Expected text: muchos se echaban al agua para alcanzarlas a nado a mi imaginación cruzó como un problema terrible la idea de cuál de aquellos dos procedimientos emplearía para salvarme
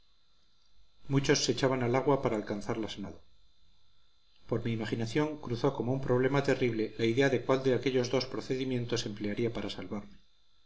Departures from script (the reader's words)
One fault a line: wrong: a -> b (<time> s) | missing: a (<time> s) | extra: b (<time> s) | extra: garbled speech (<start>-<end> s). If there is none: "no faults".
wrong: a -> por (4.5 s)